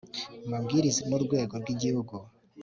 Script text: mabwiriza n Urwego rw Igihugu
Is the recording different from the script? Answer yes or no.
no